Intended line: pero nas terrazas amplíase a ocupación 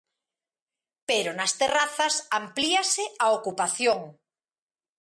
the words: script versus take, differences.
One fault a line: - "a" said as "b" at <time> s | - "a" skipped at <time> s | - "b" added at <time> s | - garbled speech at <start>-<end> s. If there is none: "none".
none